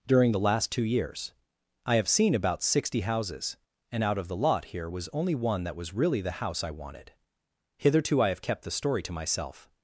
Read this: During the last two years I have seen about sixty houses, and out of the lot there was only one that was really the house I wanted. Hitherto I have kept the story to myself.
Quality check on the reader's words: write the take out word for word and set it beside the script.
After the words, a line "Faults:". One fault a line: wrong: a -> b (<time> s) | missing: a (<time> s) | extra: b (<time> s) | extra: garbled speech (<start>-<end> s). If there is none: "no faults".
During the last two years I have seen about sixty houses, and out of the lot here was only one that was really the house I wanted. Hitherto I have kept the story to myself.
Faults:
wrong: there -> here (4.7 s)